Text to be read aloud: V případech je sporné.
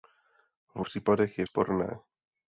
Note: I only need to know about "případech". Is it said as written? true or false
true